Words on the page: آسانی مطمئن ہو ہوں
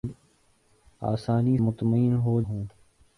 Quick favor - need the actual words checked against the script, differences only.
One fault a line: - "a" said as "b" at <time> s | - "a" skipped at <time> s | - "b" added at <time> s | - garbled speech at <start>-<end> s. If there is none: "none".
none